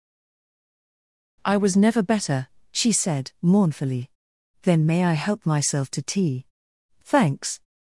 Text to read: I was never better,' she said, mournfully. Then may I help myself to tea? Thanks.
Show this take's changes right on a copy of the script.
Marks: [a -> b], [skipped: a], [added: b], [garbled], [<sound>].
I was never better,' she said, mournfully. Then may I help myself to tea? Thanks.